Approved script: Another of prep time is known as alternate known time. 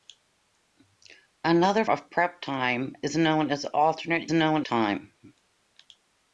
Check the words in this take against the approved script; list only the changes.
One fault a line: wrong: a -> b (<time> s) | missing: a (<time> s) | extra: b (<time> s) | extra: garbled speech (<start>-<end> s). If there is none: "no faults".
no faults